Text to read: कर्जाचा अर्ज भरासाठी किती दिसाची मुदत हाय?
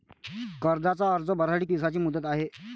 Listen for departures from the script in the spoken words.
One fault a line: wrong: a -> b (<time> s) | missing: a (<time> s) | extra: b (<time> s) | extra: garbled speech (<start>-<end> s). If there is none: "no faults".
missing: किती (1.6 s)